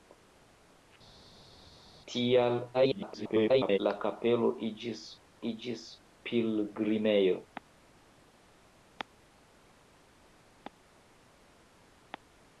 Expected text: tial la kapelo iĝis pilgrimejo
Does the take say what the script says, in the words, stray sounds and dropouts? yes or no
no